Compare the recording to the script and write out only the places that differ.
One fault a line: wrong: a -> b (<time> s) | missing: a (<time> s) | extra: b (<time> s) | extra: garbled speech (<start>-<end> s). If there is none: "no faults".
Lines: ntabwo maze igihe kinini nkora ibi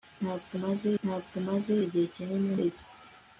extra: ntabwo maze (1.0 s)
missing: nkora (2.5 s)